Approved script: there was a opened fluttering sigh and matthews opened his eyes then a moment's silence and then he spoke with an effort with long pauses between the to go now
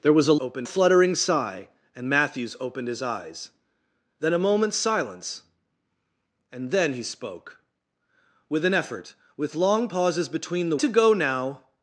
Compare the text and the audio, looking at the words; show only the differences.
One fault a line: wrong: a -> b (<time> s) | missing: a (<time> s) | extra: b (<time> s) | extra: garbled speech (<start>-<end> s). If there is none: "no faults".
no faults